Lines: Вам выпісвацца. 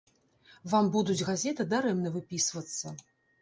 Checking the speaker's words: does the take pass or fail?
fail